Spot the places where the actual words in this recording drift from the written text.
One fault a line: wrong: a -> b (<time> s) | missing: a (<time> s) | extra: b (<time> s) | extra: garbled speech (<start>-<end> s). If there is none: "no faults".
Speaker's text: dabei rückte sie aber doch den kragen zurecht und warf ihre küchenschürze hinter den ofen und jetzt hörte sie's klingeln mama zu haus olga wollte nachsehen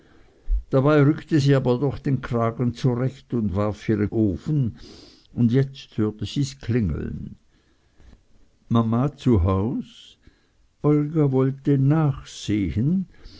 missing: küchenschürze hinter den (4.1 s)